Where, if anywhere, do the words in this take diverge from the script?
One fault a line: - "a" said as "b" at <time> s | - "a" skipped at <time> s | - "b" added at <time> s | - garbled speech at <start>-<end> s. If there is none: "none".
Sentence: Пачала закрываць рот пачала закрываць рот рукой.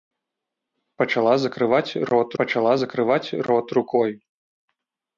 none